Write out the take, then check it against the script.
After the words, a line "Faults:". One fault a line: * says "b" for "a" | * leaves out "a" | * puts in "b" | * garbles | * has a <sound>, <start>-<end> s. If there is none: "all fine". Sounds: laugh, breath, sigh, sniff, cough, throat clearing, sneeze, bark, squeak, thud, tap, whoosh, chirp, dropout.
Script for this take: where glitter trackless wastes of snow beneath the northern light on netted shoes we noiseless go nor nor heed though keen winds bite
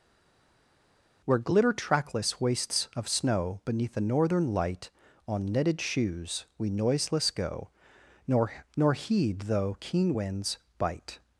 where glitter trackless wastes of snow beneath the northern light on netted shoes we noiseless go nor nor heed though keen winds bite
Faults:
all fine